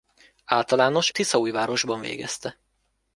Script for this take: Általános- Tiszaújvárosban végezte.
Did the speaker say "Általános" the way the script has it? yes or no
yes